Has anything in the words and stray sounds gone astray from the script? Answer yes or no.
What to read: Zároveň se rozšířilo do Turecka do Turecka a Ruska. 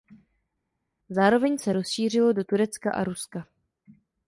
yes